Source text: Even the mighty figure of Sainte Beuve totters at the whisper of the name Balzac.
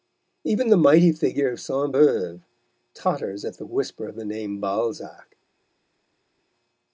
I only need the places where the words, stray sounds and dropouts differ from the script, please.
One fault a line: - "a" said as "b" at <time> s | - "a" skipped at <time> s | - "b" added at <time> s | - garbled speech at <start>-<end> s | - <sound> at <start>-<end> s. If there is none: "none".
none